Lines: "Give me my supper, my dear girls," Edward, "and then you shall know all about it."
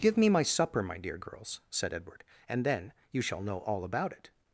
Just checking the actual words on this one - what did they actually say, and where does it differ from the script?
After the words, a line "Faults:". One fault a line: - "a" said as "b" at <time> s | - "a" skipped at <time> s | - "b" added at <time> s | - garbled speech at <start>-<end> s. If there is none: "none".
"Give me my supper, my dear girls," said Edward, "and then you shall know all about it."
Faults:
- "said" added at 1.7 s